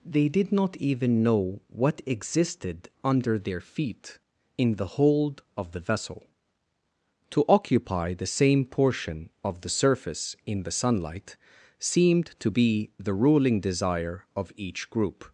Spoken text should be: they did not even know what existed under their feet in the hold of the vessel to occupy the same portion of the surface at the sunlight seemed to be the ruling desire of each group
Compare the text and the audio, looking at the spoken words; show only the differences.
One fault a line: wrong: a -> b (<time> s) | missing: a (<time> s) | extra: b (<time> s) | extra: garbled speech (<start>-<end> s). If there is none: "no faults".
wrong: at -> in (10.4 s)